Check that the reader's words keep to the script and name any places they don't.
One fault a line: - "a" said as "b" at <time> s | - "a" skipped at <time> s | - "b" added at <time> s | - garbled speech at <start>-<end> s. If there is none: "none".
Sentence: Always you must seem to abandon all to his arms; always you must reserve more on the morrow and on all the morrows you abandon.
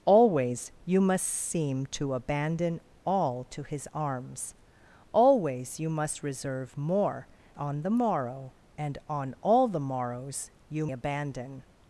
none